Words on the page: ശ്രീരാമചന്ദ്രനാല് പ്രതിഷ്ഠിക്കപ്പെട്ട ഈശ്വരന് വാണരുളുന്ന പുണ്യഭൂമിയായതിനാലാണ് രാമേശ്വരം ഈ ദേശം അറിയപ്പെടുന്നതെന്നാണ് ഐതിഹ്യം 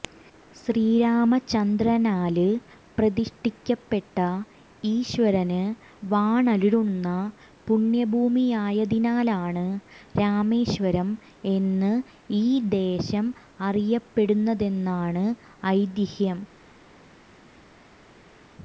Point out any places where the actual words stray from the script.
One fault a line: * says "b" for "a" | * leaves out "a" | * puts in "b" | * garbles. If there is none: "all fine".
* puts in "എന്ന്"